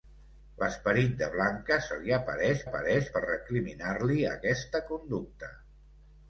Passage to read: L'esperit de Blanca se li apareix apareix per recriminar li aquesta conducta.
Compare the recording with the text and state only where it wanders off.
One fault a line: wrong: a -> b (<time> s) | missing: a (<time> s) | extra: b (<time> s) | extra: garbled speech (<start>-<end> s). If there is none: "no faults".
no faults